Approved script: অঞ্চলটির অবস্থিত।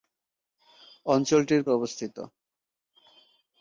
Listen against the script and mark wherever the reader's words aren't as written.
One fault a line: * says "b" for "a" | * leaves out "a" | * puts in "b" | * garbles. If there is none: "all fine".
all fine